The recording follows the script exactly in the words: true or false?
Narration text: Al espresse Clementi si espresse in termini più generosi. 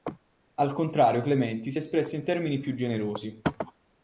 false